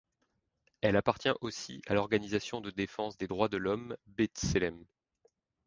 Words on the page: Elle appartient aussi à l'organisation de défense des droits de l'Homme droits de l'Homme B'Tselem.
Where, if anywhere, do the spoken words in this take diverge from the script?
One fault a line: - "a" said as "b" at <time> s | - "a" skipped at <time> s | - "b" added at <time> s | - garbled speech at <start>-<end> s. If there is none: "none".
- "droits de l'Homme" skipped at 4.0 s